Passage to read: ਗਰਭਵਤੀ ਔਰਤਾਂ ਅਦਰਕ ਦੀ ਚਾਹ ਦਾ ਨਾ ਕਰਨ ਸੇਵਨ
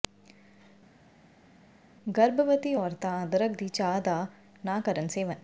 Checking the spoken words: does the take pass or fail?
pass